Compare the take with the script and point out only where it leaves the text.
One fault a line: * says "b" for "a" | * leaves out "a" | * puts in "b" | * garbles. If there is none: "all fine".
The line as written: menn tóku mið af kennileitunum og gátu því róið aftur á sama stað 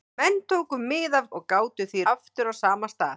* leaves out "kennileitunum"
* leaves out "róið"